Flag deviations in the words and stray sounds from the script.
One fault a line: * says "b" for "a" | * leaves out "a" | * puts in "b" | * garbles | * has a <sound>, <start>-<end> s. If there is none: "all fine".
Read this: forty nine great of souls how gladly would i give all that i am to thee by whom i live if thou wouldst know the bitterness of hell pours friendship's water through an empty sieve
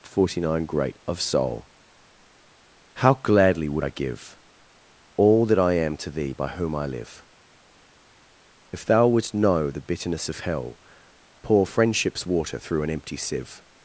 * says "soul" for "souls"
* says "pour" for "pours"